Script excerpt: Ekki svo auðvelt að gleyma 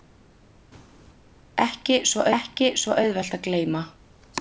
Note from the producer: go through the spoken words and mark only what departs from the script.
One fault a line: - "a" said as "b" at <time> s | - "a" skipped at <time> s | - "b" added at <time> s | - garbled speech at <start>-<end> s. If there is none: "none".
- "ekki svo" added at 2.4 s